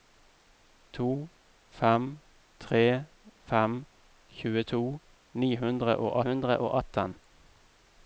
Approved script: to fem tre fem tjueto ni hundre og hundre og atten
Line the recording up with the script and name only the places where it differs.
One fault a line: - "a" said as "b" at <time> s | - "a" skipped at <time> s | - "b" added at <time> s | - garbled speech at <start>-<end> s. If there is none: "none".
none